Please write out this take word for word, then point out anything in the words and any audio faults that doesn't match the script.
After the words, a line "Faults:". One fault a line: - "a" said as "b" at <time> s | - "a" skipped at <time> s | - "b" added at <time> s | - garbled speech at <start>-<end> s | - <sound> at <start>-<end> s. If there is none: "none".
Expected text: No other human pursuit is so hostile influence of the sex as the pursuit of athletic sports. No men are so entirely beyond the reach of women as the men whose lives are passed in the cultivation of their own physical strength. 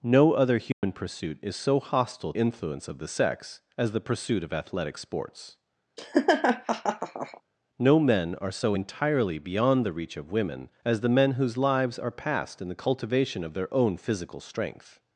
No other human pursuit is so hostile influence of the sex as the pursuit of athletic sports. No men are so entirely beyond the reach of women as the men whose lives are passed in the cultivation of their own physical strength.
Faults:
- dropout at 0.7-0.8 s
- laugh at 6.0-7.4 s